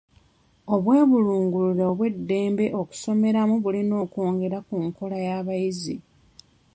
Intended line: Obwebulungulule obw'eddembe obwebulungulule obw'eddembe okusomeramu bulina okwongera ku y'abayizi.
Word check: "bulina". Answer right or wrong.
right